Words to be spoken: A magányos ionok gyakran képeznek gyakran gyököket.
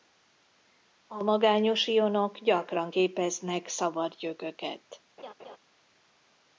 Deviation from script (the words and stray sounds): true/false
true